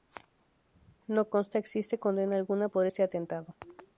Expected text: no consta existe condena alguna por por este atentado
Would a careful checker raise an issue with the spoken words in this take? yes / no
yes